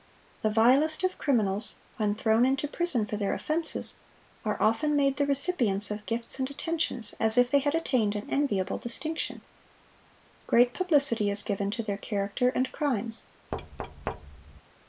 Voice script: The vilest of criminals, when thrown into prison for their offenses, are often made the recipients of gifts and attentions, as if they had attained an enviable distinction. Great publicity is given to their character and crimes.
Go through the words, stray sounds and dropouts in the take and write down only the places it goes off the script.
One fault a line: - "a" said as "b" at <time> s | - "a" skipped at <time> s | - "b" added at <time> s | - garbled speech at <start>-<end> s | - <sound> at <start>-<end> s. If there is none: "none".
- thud at 13.5-14.6 s